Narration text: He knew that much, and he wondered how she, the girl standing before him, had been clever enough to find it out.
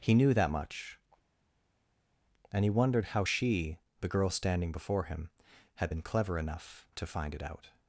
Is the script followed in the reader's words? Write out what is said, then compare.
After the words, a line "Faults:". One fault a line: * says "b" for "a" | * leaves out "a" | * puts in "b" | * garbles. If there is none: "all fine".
He knew that much, and he wondered how she, the girl standing before him, had been clever enough to find it out.
Faults:
all fine